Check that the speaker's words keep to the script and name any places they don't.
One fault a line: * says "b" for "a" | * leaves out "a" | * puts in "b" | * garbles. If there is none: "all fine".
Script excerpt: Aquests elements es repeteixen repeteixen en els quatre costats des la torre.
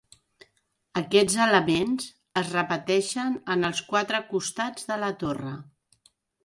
* leaves out "repeteixen"
* says "de" for "des"